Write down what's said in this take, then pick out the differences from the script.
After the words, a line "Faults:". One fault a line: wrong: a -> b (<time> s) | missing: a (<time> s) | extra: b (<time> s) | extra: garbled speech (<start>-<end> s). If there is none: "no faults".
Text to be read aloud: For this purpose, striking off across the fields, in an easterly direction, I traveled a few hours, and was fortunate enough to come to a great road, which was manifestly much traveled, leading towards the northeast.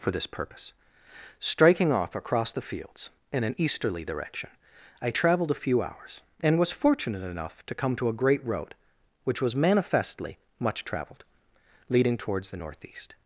For this purpose, striking off across the fields, in an easterly direction, I traveled a few hours, and was fortunate enough to come to a great road, which was manifestly much traveled, leading towards the northeast.
Faults:
no faults